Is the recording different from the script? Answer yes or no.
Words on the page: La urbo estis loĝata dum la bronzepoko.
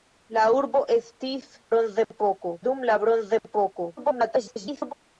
yes